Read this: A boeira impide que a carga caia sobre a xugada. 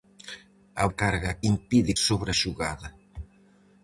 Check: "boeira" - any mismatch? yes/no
yes